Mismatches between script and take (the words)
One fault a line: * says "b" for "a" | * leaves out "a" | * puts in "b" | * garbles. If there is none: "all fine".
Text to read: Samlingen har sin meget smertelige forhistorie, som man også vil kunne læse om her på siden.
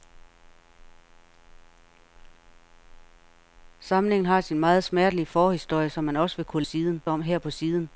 * says "siden" for "læse"